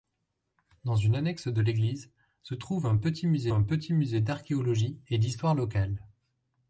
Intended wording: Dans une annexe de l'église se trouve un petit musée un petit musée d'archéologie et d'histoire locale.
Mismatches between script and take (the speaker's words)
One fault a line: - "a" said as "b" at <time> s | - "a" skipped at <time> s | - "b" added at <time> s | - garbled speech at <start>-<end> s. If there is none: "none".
none